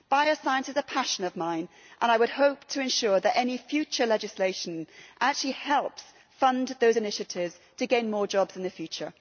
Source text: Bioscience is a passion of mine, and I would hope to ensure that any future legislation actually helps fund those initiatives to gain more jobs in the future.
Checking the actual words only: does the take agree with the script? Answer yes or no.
yes